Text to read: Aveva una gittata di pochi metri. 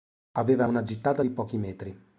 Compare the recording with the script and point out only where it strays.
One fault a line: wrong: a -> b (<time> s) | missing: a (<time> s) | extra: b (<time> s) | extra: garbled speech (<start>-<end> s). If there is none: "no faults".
no faults